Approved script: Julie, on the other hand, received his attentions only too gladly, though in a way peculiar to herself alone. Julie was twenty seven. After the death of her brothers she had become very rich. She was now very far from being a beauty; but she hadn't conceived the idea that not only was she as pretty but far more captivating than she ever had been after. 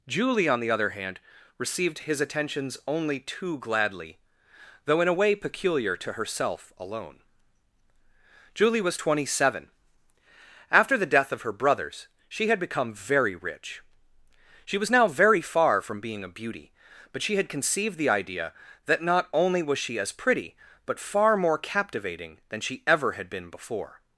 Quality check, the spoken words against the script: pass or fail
fail